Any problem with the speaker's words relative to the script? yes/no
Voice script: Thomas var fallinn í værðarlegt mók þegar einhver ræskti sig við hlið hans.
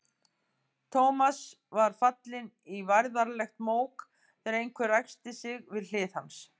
no